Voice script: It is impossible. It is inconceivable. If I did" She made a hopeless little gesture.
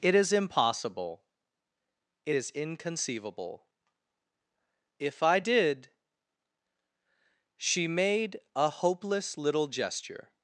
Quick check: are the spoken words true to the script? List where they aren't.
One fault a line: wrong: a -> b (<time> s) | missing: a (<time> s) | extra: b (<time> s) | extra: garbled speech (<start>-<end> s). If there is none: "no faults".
no faults